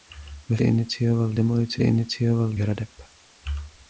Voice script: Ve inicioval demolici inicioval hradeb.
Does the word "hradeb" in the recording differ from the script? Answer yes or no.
no